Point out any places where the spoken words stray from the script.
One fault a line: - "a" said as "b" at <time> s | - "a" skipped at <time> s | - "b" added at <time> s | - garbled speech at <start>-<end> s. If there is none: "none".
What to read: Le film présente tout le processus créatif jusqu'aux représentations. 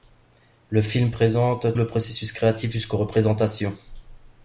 - "tout" skipped at 1.8 s